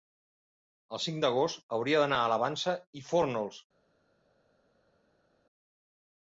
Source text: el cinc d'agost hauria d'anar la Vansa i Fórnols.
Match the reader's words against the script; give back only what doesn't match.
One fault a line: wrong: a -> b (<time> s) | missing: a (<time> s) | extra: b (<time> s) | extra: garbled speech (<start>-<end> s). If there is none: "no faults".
extra: a (2.2 s)